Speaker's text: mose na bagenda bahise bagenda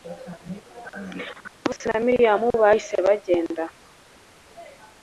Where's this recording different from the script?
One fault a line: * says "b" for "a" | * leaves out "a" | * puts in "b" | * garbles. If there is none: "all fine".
* says "miriyamu" for "bagenda"